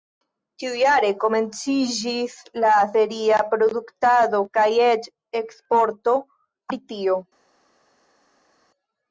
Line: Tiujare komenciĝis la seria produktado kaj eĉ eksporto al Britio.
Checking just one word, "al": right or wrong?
wrong